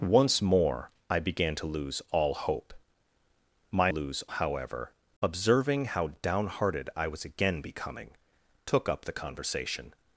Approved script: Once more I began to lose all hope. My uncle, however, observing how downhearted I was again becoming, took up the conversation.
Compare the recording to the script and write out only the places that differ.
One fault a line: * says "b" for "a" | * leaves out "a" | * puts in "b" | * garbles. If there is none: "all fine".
* says "lose" for "uncle"